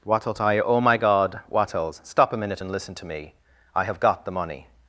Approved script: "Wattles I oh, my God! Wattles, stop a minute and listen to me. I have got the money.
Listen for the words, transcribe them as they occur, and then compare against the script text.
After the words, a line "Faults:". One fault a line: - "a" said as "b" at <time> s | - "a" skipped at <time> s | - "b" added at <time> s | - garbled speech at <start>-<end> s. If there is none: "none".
"Wattles I oh, my God! Wattles, stop a minute and listen to me. I have got the money.
Faults:
none